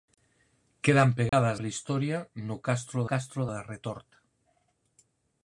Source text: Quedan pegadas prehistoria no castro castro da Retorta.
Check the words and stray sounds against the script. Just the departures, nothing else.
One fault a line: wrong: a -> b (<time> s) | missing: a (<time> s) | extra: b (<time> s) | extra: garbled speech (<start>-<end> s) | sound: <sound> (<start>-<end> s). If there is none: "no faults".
sound: dropout (1.3-1.3 s)